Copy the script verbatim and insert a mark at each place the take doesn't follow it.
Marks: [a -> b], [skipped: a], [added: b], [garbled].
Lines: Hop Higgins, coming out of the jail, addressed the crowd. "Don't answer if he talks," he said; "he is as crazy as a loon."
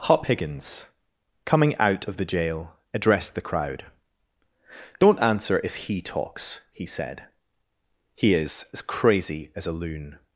Hop Higgins, coming out of the jail, addressed the crowd. "Don't answer if he talks," he said; "he is as crazy as a loon."